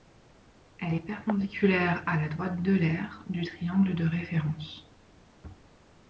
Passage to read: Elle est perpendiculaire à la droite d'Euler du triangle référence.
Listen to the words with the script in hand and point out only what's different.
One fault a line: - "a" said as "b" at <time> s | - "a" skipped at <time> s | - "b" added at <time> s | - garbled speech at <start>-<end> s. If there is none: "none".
- "de" added at 3.9 s